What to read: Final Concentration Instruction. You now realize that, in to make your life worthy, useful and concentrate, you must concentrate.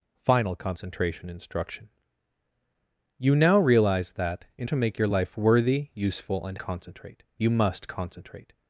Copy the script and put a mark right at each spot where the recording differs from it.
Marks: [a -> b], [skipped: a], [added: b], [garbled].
Final Concentration Instruction. You now realize that, in to make your life worthy, useful and concentrate, you must concentrate.